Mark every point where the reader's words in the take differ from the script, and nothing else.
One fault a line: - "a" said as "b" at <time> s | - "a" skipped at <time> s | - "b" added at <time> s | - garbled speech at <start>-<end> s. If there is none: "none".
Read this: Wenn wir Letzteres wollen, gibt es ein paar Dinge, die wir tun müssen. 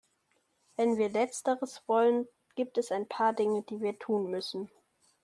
none